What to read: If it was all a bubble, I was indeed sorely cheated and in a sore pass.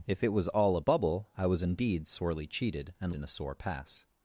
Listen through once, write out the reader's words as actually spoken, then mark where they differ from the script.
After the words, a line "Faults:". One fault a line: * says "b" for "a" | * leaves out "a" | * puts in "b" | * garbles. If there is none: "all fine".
If it was all a bubble, I was indeed sorely cheated and in a sore pass.
Faults:
all fine